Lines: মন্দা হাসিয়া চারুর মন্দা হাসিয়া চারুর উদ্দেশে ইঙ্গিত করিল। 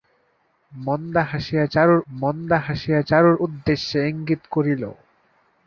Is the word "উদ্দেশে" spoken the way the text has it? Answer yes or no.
yes